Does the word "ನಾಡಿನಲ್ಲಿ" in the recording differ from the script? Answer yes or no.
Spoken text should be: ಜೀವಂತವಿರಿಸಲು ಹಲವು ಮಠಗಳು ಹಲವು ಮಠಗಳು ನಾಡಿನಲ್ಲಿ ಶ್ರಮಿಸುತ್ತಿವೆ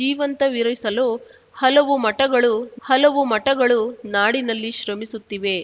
no